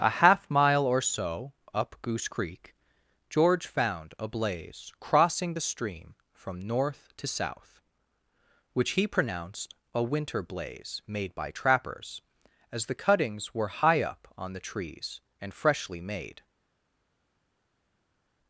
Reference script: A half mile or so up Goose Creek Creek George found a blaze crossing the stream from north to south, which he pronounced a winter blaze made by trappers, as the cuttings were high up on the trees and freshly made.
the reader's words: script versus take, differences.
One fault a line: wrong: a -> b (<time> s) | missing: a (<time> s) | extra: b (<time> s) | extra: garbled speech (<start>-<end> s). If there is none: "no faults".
missing: Creek (2.7 s)